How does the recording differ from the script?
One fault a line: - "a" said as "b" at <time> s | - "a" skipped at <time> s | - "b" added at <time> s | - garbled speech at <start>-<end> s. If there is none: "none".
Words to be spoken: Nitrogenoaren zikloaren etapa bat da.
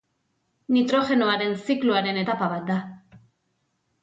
none